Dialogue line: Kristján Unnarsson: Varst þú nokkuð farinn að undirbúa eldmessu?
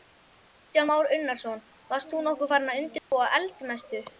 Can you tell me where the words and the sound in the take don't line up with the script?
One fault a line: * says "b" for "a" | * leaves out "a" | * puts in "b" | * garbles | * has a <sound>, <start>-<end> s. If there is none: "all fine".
* puts in "Már"
* has a dropout, 3.0-3.1 s